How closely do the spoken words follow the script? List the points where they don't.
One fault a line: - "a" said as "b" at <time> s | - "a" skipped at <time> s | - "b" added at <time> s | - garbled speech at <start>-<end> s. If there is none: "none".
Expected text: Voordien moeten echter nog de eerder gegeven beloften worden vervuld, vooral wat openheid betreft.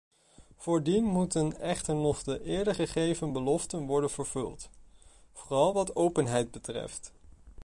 none